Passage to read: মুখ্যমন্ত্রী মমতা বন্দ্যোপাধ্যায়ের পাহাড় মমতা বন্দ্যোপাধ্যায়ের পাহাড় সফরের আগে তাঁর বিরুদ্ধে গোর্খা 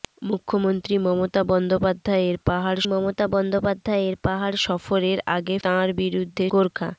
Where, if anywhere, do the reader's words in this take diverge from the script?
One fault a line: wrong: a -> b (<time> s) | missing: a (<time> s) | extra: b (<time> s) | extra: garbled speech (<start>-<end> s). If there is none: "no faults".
no faults